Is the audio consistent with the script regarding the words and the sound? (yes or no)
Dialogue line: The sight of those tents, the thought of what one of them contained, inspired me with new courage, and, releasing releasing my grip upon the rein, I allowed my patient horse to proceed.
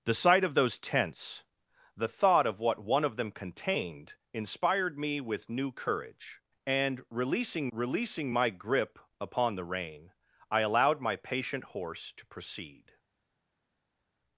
yes